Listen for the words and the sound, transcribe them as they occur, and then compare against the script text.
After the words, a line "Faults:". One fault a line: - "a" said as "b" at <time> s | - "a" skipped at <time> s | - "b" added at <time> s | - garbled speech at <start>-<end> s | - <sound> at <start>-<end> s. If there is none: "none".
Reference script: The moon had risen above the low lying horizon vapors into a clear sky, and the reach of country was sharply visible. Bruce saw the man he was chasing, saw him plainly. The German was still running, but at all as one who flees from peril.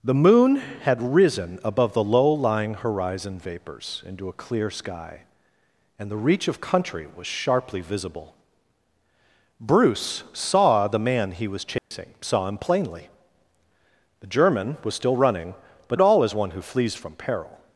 The moon had risen above the low lying horizon vapors into a clear sky, and the reach of country was sharply visible. Bruce saw the man he was chasing, saw him plainly. The German was still running, but at all as one who flees from peril.
Faults:
- dropout at 11.8-11.9 s